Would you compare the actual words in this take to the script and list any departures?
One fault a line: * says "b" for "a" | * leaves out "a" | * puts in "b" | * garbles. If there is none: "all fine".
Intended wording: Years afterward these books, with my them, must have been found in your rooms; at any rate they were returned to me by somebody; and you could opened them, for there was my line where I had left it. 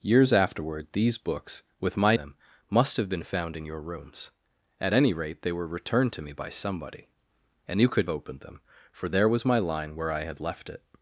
all fine